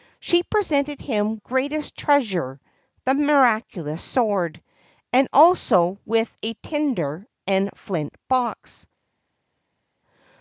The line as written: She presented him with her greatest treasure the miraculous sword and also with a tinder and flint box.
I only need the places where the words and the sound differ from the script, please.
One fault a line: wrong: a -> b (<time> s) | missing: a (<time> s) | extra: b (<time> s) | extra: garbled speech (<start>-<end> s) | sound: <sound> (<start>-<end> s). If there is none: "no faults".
missing: with her (1.4 s)